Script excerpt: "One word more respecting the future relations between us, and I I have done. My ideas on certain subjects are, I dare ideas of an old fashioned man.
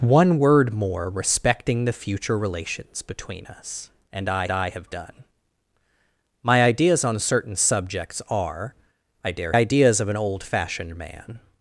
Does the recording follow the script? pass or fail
pass